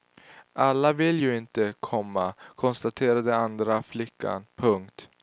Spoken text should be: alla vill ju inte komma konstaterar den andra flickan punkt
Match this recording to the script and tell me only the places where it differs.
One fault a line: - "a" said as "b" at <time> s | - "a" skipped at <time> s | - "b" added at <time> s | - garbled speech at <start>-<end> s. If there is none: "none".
none